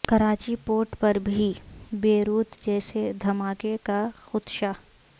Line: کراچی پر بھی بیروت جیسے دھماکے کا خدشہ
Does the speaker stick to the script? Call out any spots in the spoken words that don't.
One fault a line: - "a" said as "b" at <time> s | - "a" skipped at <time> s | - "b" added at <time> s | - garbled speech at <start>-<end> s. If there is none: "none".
- "پورٹ" added at 0.7 s